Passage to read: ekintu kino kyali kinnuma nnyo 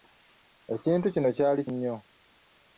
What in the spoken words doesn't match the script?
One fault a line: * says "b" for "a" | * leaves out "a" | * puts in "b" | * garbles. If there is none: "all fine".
* leaves out "kinnuma"